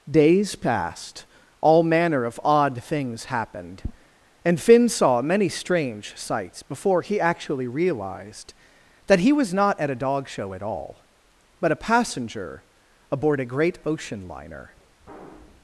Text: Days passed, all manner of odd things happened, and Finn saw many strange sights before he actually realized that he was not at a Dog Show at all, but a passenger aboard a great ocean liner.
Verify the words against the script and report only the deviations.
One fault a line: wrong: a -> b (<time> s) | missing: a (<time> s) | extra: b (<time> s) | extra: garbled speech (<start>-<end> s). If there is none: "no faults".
no faults